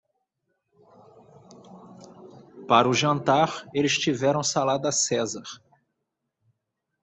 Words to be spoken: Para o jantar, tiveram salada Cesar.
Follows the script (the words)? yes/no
no